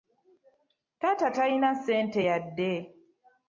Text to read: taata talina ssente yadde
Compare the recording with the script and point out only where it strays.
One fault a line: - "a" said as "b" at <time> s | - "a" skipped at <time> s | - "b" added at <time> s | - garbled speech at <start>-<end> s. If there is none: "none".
none